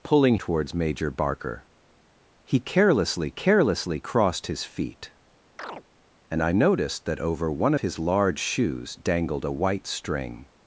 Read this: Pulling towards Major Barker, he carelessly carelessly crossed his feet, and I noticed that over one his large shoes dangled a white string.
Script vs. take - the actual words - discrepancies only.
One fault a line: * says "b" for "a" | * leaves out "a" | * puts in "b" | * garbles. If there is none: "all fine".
all fine